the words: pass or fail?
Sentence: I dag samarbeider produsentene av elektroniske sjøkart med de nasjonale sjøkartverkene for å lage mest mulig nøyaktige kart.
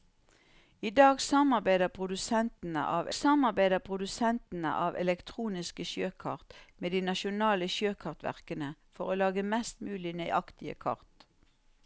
fail